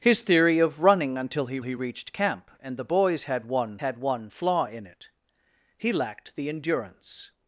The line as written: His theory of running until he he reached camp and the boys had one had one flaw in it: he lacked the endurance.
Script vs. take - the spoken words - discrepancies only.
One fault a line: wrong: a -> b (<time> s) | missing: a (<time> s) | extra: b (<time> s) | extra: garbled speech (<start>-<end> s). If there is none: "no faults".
no faults